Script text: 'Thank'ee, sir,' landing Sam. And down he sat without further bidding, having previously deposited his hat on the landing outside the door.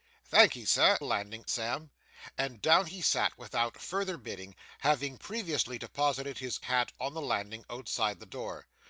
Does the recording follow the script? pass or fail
pass